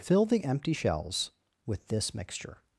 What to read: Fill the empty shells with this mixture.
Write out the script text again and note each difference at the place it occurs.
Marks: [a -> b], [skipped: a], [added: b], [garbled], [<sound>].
Fill the empty shells with this mixture.